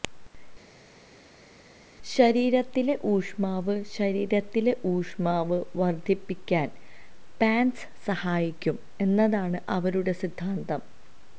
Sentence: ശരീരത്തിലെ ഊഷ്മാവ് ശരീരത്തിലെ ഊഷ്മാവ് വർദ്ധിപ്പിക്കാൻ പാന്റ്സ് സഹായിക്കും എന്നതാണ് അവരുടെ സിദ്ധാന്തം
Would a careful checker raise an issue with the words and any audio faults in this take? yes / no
no